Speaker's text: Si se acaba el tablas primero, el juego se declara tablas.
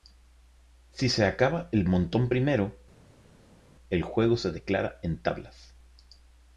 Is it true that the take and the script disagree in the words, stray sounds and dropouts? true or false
true